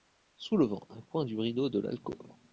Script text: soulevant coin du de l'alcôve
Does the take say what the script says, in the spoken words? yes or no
no